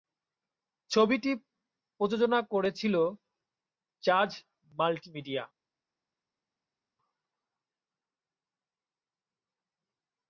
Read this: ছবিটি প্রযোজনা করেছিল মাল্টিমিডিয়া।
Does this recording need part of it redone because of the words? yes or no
yes